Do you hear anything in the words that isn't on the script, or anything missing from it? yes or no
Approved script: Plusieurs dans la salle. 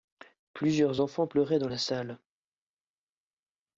yes